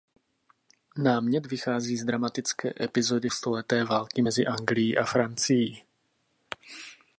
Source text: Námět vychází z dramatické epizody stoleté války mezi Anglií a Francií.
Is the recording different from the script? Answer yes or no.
no